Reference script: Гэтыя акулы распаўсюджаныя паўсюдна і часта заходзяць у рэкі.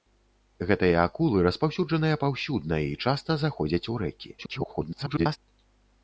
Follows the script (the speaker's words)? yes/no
no